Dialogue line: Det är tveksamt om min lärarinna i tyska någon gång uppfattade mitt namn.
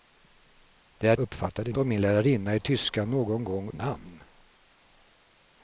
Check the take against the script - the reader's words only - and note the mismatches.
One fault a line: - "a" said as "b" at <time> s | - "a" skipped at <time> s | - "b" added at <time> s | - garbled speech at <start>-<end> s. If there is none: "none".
- "tveksamt" said as "uppfattade" at 1.2 s
- "uppfattade mitt" skipped at 3.7 s